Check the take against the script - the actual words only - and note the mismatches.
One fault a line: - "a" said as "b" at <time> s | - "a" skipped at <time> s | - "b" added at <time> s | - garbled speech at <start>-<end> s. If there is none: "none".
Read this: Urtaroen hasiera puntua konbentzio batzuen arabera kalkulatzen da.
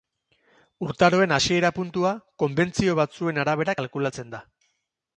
none